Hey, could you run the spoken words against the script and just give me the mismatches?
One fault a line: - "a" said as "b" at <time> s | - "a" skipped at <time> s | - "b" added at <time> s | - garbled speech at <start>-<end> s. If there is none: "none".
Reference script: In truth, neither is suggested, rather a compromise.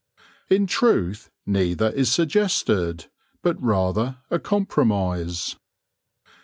- "but" added at 3.4 s